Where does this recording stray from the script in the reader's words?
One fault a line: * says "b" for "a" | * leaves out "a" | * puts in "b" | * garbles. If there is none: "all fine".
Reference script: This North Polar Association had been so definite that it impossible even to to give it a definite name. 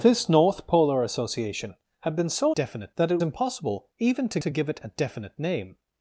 all fine